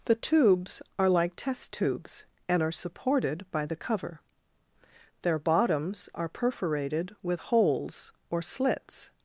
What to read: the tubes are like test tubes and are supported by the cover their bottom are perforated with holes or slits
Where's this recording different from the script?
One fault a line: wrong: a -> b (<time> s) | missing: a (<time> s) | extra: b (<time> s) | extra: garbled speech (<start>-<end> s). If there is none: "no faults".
wrong: bottom -> bottoms (5.4 s)